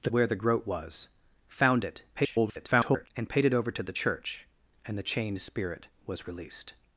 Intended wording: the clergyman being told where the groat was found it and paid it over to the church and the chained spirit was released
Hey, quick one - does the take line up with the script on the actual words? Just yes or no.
no